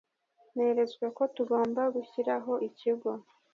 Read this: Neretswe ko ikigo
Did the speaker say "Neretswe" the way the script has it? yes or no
yes